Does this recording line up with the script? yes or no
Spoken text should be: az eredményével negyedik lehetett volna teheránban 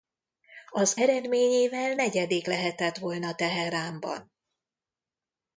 yes